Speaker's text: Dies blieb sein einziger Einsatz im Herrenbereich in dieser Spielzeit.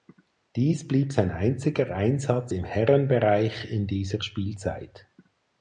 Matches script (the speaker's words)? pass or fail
pass